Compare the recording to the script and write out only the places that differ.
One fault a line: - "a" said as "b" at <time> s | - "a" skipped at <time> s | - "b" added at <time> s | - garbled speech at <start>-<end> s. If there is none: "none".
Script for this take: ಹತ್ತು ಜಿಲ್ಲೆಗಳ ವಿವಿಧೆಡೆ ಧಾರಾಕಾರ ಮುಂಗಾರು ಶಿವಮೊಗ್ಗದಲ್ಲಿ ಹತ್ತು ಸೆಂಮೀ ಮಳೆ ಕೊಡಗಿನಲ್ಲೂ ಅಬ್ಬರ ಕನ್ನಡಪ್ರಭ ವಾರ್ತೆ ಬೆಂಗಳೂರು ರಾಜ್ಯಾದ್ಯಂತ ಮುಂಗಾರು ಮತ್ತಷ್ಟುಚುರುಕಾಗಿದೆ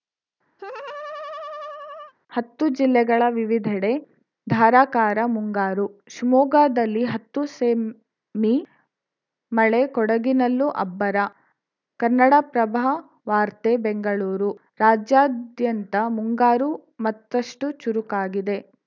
none